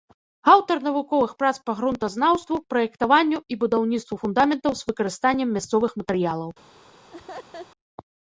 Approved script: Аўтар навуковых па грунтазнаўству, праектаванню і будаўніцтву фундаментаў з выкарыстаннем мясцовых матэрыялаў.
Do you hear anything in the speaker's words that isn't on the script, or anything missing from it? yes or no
yes